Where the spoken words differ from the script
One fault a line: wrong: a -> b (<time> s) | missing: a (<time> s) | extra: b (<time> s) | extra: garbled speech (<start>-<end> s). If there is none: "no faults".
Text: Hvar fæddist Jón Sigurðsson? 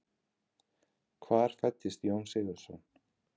no faults